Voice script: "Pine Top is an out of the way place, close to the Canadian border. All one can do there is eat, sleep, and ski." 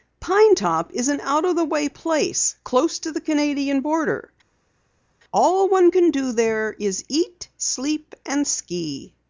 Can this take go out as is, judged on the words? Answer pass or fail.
pass